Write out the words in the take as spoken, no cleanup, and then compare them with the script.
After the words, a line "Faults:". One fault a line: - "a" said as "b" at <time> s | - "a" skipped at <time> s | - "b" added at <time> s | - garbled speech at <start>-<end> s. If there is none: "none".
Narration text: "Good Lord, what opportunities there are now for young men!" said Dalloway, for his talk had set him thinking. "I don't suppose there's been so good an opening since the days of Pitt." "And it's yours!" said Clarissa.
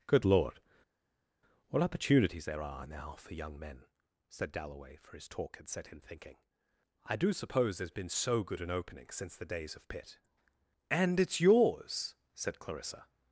"Good Lord, what opportunities there are now for young men!" said Dalloway, for his talk had set him thinking. "I do suppose there's been so good an opening since the days of Pitt." "And it's yours!" said Clarissa.
Faults:
- "don't" said as "do" at 7.2 s